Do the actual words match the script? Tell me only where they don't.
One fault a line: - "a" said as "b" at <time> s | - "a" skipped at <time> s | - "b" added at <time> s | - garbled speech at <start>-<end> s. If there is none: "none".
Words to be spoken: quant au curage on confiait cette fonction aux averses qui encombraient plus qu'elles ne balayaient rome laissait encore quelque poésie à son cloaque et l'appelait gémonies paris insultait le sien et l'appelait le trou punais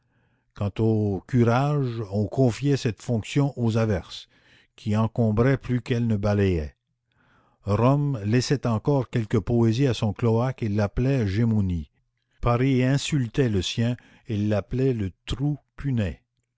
none